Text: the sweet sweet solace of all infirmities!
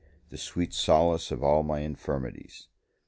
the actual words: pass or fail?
fail